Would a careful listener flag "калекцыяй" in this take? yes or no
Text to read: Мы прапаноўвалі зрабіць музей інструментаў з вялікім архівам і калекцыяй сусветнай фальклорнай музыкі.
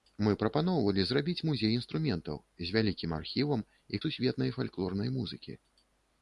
yes